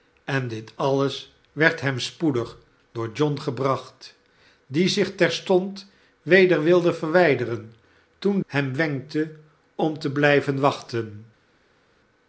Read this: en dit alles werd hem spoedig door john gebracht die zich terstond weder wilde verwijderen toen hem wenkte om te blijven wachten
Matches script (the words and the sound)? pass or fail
pass